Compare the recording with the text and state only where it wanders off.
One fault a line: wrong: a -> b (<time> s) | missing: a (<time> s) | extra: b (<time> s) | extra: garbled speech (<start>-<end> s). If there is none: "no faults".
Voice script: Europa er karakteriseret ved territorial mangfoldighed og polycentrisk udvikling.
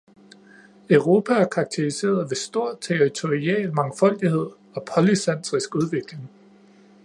extra: stor (2.4 s)